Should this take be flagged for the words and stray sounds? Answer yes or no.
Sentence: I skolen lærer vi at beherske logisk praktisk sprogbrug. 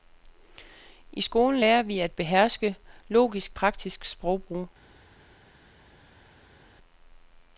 no